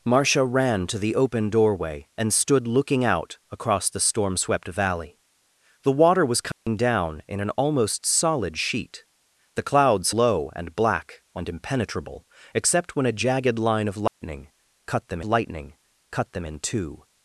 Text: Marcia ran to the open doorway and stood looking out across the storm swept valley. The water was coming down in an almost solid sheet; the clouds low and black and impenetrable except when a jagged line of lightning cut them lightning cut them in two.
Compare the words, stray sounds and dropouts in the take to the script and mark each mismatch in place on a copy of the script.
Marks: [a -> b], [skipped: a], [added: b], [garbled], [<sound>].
Marcia ran to the open doorway and stood looking out across the storm swept valley. The water was coming [dropout] down in an almost solid sheet; the clouds low and black and impenetrable except when a jagged line of lightning [dropout] cut them lightning cut them in two.